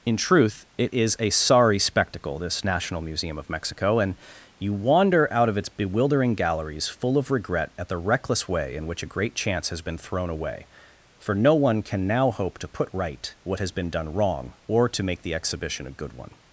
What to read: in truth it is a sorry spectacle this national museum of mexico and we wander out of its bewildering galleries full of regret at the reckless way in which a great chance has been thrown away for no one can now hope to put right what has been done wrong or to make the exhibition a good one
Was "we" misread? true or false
true